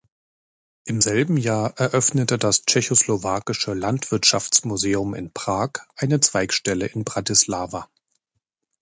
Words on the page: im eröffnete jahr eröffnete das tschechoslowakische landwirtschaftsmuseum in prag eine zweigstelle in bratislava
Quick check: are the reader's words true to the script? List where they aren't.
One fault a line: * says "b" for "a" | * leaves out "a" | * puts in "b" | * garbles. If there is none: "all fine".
* says "selben" for "eröffnete"